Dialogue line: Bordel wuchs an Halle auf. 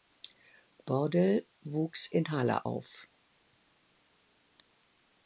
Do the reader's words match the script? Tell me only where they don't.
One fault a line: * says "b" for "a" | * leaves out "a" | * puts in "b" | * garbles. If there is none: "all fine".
* says "in" for "an"